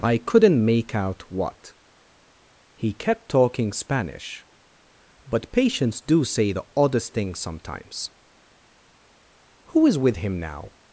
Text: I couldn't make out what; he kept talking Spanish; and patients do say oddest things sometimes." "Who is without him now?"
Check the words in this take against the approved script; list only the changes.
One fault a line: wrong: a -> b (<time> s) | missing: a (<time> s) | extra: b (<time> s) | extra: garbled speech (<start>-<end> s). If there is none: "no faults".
wrong: and -> but (5.3 s)
extra: the (6.5 s)
wrong: without -> with (10.0 s)